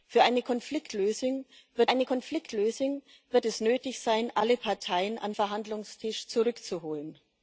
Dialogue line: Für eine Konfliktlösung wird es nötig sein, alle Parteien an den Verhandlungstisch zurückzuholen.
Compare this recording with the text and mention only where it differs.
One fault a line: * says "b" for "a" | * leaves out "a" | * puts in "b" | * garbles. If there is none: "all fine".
* puts in "eine Konfliktlösung wird"
* leaves out "den"